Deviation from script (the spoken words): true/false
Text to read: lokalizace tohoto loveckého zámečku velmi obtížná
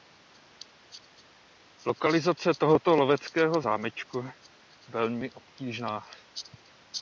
false